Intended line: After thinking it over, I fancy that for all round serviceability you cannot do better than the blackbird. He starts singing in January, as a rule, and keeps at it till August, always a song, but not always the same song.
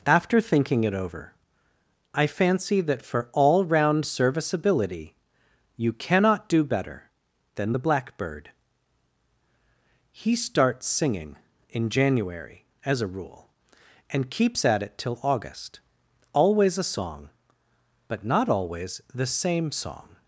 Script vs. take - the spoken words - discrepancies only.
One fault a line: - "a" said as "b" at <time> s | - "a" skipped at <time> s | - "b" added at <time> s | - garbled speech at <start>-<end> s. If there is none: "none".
none